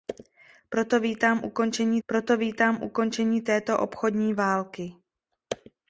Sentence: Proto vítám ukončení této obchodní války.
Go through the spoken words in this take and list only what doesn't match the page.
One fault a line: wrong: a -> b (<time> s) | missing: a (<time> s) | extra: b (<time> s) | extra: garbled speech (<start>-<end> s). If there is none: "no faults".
extra: proto vítám ukončení (2.1 s)